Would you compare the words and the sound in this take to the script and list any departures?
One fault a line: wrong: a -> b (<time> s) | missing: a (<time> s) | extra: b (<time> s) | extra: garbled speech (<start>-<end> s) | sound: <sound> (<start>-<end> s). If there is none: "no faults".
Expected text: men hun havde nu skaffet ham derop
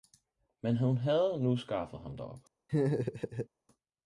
sound: laugh (2.7-3.5 s)